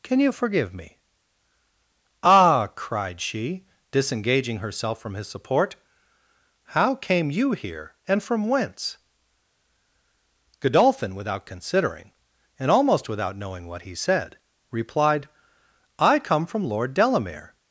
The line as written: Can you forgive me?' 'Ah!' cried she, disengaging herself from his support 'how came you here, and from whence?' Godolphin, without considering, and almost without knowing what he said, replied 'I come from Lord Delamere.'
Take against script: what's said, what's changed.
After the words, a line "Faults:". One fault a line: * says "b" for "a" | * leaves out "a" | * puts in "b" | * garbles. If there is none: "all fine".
Can you forgive me?' 'Ah!' cried she, disengaging herself from his support 'how came you here, and from whence?' Godolphin, without considering, and almost without knowing what he said, replied 'I come from Lord Delamere.'
Faults:
all fine